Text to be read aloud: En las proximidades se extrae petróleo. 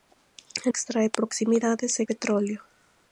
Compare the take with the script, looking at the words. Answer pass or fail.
fail